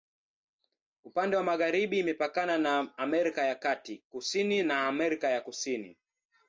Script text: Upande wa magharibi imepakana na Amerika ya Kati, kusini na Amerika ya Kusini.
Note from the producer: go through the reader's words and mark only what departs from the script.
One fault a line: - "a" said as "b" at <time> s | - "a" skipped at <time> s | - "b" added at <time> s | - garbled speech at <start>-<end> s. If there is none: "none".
none